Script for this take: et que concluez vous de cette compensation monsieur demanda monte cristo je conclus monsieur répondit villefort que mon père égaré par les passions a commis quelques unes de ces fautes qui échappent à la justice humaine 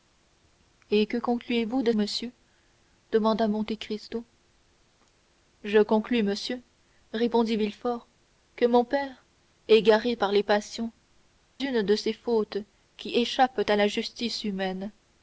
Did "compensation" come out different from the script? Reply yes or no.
yes